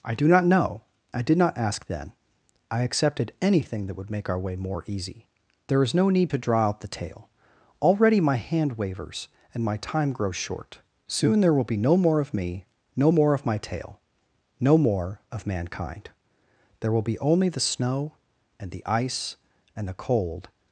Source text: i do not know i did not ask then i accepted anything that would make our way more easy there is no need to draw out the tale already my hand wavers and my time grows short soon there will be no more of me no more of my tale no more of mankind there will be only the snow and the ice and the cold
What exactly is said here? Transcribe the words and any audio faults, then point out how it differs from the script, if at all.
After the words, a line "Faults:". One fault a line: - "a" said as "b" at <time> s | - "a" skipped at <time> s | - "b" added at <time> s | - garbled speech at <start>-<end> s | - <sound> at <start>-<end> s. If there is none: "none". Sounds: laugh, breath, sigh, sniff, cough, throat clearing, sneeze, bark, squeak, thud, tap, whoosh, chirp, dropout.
i do not know i did not ask then i accepted anything that would make our way more easy there is no need to draw out the tale already my hand wavers and my time grows short soon there will be no more of me no more of my tale no more of mankind there will be only the snow and the ice and the cold
Faults:
none